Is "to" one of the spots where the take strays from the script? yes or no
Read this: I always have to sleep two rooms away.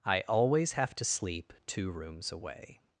no